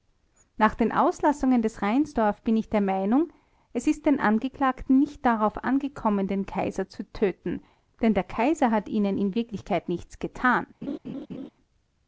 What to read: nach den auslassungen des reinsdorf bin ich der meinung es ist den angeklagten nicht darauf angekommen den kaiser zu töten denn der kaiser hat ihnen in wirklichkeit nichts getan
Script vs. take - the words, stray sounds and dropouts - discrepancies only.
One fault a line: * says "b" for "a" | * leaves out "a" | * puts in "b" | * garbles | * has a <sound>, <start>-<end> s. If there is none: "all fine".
* has a laugh, 10.8-11.5 s